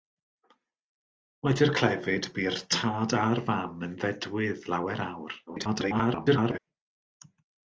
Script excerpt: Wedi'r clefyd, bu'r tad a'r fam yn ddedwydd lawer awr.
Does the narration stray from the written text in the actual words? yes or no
yes